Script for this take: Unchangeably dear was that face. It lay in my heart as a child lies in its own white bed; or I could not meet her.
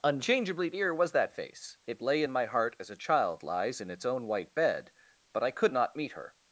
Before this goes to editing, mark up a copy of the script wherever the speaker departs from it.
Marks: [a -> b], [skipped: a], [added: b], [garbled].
Unchangeably dear was that face. It lay in my heart as a child lies in its own white bed; [or -> but] I could not meet her.